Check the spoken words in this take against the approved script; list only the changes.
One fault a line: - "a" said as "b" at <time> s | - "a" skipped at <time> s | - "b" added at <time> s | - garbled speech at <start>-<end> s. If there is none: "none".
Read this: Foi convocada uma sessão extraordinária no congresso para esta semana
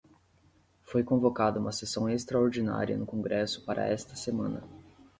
none